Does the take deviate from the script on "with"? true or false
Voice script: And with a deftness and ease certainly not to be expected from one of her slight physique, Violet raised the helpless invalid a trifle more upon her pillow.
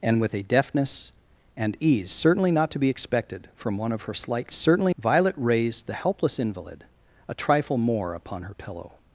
false